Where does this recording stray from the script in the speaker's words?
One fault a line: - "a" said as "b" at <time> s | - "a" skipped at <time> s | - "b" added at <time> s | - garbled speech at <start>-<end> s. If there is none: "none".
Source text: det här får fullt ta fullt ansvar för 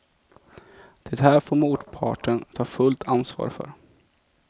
- "fullt" said as "motparten" at 1.6 s